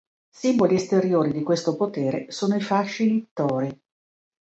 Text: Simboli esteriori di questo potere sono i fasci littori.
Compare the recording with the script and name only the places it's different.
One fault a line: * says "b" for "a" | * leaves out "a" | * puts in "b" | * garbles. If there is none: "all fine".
all fine